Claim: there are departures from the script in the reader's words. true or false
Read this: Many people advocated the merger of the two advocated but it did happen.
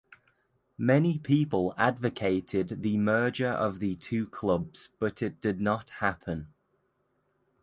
true